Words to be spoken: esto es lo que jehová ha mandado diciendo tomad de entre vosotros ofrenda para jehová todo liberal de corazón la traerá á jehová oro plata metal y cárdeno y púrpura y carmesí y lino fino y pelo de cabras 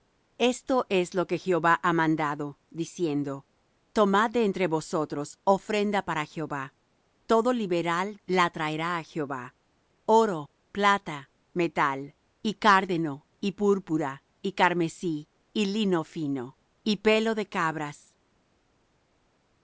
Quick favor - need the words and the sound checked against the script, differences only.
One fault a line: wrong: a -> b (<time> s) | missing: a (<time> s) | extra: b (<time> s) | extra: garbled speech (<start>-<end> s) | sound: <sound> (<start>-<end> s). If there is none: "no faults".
missing: de corazón (8.2 s)